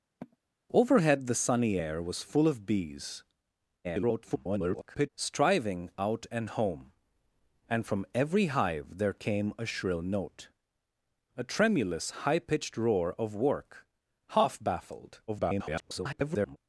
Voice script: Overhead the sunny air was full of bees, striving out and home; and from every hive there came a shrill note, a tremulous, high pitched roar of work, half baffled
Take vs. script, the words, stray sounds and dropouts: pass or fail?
fail